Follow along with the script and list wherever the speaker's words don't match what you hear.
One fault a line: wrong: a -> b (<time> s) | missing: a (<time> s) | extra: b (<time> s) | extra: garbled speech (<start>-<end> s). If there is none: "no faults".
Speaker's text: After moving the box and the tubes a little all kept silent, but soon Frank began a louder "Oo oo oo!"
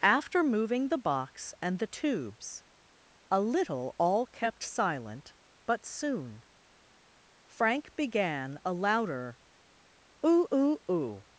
no faults